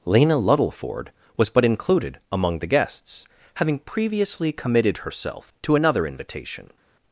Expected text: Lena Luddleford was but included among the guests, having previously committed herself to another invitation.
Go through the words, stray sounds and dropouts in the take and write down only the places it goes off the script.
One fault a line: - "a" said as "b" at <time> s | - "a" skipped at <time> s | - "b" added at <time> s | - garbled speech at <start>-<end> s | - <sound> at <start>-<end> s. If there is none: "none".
none